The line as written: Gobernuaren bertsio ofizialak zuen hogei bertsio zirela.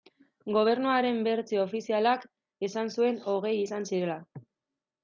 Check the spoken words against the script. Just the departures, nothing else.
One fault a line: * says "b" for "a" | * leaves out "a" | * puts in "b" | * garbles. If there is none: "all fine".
* puts in "esan"
* says "izan" for "bertsio"